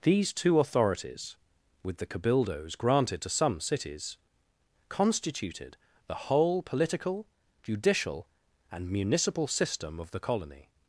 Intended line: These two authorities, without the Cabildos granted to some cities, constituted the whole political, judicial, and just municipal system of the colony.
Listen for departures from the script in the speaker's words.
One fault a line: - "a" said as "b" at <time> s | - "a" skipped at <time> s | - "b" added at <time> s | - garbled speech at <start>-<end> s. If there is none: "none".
- "without" said as "with" at 1.8 s
- "just" skipped at 8.9 s